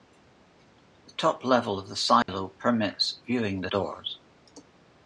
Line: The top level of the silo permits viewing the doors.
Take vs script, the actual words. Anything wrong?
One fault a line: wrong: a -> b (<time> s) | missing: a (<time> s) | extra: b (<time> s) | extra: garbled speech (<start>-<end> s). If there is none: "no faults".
no faults